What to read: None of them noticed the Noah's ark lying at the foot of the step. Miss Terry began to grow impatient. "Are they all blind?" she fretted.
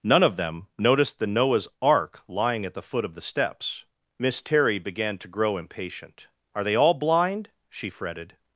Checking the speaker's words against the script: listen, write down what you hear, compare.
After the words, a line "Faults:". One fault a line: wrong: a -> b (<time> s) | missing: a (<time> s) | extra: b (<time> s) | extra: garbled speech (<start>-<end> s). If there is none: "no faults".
None of them noticed the Noah's ark lying at the foot of the steps. Miss Terry began to grow impatient. "Are they all blind?" she fretted.
Faults:
wrong: step -> steps (3.2 s)